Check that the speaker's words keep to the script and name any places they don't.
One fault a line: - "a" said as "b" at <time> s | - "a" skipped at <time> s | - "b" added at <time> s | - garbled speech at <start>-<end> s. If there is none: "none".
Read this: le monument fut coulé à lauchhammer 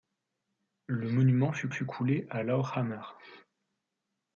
- "fut" added at 1.7 s